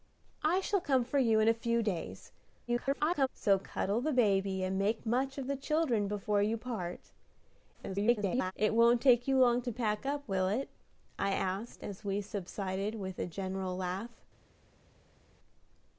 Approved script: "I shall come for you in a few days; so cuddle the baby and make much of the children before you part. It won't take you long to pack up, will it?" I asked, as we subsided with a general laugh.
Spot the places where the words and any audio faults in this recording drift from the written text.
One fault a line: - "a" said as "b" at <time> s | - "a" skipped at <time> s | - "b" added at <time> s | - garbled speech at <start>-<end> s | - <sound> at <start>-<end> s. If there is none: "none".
- garbled speech at 2.7-3.3 s
- garbled speech at 7.7-8.5 s